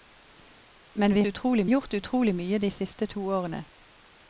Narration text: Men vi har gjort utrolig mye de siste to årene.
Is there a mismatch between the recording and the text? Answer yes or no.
yes